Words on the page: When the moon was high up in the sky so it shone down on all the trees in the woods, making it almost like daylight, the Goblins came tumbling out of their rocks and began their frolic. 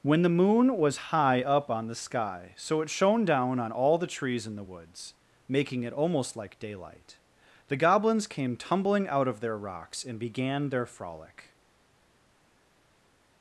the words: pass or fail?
fail